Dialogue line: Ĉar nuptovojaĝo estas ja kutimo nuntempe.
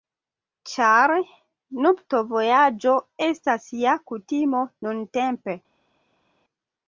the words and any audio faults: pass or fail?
pass